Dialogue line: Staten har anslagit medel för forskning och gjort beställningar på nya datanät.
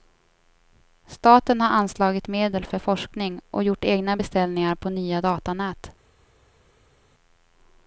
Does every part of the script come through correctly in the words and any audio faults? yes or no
no